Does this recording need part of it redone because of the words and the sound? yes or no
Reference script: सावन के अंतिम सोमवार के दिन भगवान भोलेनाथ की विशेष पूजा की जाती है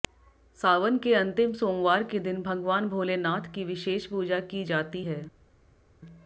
no